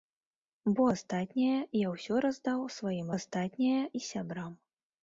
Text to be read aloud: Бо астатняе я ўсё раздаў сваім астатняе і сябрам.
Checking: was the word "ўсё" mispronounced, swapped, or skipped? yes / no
no